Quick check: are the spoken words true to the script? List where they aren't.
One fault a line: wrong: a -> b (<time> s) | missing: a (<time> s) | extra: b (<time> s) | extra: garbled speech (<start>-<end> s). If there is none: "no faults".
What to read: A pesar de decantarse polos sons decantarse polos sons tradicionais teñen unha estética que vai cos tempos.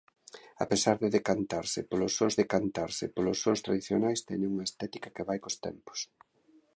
no faults